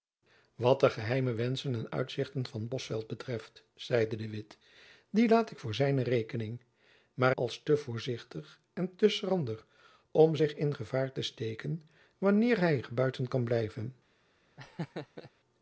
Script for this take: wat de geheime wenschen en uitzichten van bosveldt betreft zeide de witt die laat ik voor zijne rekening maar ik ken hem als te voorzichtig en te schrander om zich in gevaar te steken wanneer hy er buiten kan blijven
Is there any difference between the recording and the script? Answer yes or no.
yes